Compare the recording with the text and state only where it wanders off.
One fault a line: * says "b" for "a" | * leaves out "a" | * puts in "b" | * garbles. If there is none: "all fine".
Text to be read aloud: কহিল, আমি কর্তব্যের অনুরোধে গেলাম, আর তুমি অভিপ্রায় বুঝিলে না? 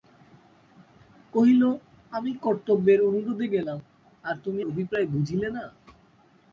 all fine